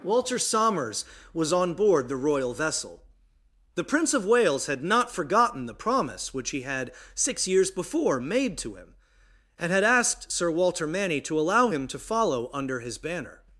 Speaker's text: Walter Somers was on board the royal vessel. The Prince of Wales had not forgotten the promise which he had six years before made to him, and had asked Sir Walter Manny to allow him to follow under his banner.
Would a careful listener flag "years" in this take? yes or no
no